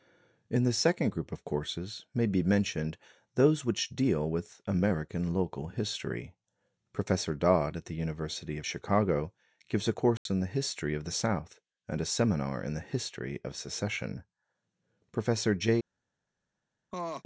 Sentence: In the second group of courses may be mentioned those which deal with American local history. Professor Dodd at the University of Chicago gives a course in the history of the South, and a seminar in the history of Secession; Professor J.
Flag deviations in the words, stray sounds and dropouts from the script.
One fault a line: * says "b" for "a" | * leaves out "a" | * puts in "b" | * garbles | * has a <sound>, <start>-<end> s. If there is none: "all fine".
* has a dropout, 10.2-10.3 s
* has a laugh, 16.9-17.2 s